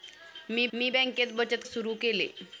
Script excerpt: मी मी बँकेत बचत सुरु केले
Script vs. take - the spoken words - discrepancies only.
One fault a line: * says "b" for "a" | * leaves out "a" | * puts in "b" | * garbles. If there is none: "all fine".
all fine